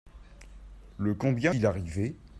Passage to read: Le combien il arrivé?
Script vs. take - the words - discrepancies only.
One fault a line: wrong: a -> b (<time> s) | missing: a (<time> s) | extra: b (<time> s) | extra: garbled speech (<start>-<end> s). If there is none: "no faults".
no faults